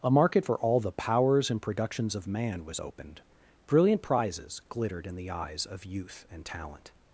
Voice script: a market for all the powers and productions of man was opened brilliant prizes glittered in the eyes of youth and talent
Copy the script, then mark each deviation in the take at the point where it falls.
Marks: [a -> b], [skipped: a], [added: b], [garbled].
a market for all the powers and productions of man was opened brilliant prizes glittered in the eyes of youth and talent